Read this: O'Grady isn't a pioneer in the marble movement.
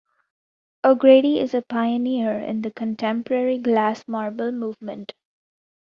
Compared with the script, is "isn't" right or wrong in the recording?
wrong